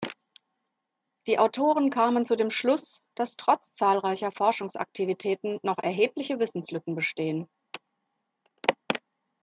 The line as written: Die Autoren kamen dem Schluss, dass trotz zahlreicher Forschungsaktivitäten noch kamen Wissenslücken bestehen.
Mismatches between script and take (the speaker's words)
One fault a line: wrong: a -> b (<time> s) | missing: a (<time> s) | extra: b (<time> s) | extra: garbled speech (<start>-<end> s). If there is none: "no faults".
extra: zu (2.2 s)
wrong: kamen -> erhebliche (5.8 s)